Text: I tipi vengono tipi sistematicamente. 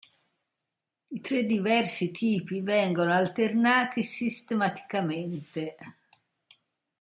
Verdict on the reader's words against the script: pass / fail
fail